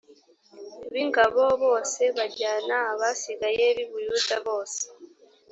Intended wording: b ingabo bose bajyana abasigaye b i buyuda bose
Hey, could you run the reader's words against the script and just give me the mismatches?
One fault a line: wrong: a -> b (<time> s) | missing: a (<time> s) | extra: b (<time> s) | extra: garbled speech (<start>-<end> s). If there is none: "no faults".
no faults